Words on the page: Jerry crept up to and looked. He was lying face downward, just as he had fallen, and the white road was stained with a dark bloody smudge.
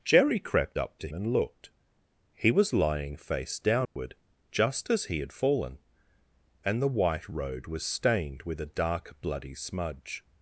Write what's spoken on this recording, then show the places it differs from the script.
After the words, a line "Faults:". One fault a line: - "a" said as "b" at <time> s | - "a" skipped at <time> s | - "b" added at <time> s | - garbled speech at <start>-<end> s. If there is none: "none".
Jerry crept up to and looked. He was lying face downward, just as he had fallen, and the white road was stained with a dark bloody smudge.
Faults:
none